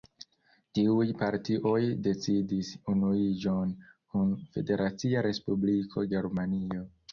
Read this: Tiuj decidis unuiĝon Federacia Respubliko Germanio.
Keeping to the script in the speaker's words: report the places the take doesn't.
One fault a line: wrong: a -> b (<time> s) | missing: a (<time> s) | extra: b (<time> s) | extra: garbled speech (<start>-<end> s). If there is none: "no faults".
extra: partioj (1.2 s)
extra: kun (4.1 s)